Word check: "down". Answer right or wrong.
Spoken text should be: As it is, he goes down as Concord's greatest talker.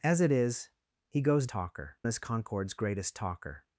wrong